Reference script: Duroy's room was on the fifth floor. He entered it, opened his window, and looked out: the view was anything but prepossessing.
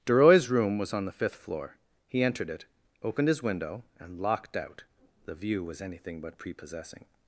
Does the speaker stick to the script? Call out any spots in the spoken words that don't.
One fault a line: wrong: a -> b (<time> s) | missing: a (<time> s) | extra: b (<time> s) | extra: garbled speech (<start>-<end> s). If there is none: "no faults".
wrong: looked -> locked (4.2 s)